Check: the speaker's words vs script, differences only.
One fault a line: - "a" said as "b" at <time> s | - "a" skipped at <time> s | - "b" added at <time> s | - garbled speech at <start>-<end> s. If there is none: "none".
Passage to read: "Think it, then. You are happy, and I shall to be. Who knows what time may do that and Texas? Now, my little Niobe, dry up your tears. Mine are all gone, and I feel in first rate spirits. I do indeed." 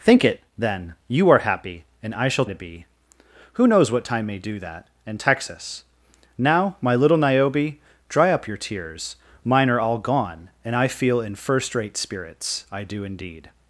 none